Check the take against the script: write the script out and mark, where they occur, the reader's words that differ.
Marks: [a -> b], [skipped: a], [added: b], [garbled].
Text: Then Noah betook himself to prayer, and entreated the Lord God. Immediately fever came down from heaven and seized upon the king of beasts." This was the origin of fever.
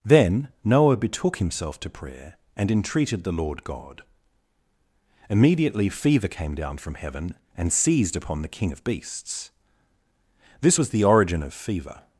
Then Noah betook himself to prayer, and entreated the Lord God. Immediately fever came down from heaven and seized upon the king of beasts." This was the origin of fever.